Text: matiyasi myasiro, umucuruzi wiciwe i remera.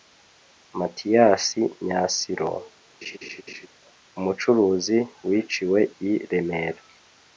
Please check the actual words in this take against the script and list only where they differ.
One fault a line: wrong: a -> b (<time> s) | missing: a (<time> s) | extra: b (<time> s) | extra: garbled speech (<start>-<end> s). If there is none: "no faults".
no faults